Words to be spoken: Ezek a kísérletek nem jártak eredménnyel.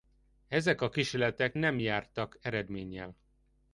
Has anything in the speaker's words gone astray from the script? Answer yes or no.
no